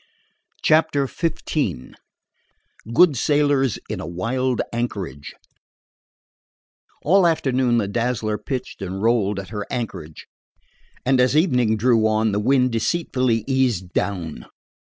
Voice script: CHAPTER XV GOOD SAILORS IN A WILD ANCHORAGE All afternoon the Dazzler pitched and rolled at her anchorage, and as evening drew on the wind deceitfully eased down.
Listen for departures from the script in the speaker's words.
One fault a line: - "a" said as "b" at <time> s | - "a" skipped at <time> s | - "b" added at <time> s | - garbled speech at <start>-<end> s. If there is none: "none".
none